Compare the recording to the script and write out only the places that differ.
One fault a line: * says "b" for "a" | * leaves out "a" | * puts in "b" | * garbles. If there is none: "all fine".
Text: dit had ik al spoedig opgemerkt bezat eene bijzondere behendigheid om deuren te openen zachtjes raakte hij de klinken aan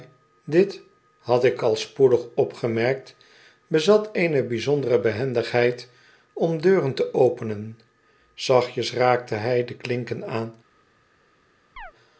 all fine